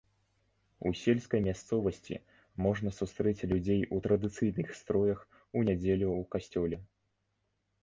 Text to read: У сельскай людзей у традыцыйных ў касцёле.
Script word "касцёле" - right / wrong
right